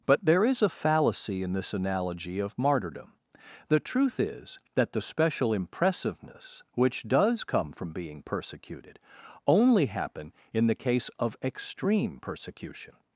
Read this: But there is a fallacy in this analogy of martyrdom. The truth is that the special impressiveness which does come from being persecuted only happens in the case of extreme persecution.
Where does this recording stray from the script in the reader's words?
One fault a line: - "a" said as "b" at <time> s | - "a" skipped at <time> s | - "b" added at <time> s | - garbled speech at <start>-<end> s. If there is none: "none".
- "happens" said as "happen" at 9.9 s